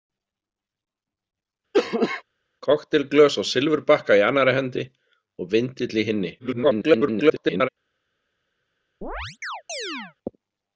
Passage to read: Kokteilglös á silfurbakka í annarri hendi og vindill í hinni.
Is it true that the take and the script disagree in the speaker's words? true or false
true